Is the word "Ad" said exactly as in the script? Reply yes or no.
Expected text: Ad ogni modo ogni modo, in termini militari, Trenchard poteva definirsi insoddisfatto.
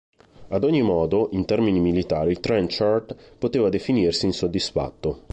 yes